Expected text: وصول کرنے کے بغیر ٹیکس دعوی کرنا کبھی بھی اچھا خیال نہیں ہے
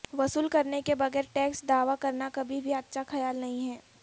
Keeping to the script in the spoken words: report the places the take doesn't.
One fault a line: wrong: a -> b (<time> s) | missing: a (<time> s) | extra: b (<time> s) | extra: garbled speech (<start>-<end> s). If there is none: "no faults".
no faults